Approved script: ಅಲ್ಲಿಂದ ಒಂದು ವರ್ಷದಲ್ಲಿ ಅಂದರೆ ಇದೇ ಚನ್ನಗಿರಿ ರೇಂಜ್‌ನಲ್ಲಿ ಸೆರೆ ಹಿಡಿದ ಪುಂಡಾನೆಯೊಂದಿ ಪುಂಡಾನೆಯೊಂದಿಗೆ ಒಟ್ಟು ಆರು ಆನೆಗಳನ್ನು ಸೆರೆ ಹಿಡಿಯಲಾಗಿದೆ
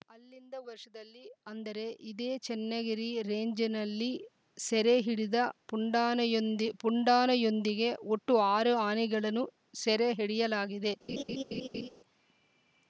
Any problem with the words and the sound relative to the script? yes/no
yes